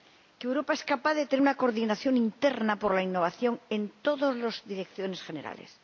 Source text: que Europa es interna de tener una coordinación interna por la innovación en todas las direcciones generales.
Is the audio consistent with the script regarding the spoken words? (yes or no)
no